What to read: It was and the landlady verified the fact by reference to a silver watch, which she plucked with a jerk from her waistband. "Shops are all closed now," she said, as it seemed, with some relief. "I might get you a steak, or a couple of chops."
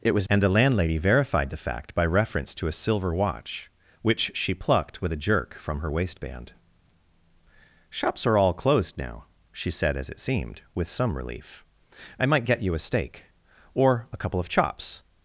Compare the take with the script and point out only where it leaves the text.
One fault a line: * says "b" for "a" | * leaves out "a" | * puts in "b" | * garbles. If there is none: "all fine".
all fine